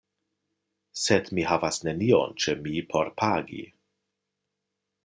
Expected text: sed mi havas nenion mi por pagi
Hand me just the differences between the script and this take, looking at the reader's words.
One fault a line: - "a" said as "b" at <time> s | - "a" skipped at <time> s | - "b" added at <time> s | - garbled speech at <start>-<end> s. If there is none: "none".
- "ĉe" added at 2.5 s